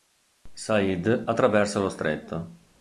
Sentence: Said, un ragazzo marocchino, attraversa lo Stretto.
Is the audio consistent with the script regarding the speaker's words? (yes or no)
no